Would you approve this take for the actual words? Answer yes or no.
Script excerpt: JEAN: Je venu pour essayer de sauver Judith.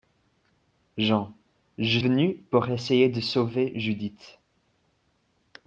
yes